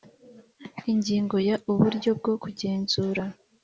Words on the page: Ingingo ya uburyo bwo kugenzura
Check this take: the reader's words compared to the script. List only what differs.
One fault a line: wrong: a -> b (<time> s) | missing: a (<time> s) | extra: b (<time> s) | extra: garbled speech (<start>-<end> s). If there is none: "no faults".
no faults